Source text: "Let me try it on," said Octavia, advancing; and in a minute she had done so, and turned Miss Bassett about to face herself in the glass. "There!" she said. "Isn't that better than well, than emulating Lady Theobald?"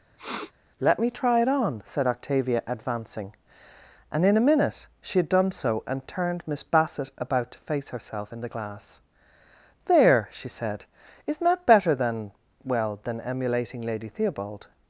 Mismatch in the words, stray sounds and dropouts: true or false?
true